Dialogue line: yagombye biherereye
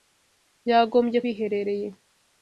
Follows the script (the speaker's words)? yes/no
yes